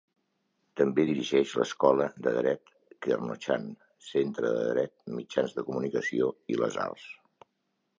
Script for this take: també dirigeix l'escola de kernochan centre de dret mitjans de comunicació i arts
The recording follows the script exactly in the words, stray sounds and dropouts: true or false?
false